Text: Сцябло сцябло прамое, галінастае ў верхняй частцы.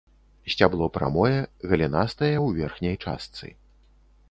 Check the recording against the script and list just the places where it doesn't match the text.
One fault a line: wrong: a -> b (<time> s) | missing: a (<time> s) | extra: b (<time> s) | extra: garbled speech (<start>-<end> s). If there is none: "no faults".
missing: сцябло (0.9 s)